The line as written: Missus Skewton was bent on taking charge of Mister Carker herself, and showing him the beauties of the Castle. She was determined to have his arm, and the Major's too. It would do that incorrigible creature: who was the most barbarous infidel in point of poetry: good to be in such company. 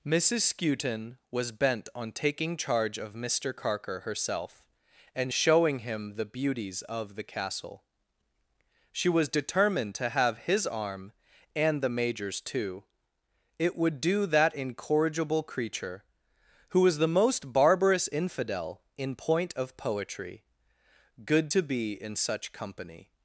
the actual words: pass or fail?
pass